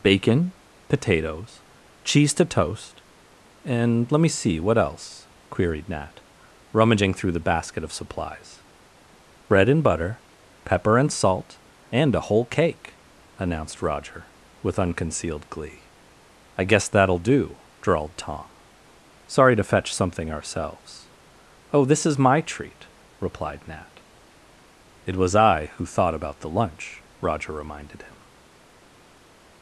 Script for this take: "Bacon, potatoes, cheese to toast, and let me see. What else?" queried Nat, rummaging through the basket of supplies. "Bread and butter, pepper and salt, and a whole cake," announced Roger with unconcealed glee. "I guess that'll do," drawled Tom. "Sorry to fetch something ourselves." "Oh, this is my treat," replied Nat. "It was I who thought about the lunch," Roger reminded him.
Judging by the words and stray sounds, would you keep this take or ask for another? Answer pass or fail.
pass